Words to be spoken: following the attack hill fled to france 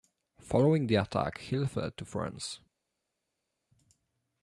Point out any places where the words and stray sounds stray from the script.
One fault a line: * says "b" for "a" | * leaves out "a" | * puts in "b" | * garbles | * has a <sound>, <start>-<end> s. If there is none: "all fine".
all fine